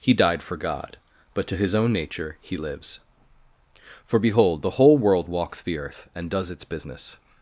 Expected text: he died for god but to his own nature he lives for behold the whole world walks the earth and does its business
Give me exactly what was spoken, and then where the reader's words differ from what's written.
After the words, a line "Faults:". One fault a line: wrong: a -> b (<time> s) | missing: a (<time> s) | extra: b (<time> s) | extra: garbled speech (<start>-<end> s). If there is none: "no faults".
he died for god but to his own nature he lives for behold the whole world walks the earth and does its business
Faults:
no faults